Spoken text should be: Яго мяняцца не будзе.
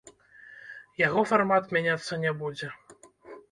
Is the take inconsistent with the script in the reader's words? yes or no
yes